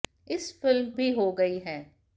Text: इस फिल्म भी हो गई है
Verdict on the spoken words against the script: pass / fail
pass